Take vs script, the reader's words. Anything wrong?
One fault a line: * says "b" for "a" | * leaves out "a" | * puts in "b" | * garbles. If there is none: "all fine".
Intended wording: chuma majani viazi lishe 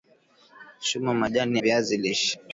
all fine